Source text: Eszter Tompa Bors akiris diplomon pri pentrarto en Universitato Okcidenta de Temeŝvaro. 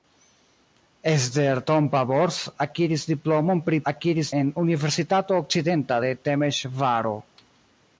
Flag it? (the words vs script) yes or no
yes